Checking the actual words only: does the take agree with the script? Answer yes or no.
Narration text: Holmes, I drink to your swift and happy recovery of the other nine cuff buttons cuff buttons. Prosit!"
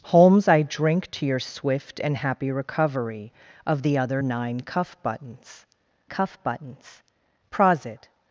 yes